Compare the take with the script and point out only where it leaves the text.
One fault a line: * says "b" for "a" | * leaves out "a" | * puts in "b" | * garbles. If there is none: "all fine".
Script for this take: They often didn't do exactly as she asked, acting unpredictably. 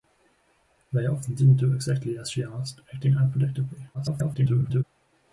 * garbles